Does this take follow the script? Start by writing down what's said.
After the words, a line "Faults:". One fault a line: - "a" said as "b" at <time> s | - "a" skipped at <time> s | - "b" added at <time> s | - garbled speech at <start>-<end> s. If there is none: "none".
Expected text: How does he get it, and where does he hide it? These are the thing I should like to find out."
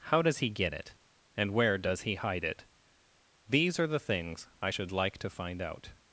How does he get it, and where does he hide it? These are the things I should like to find out."
Faults:
- "thing" said as "things" at 4.0 s